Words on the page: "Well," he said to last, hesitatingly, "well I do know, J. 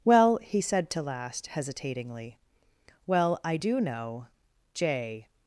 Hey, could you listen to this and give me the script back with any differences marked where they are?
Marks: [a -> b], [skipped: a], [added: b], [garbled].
"Well," he said to last, hesitatingly, "well I do know, J.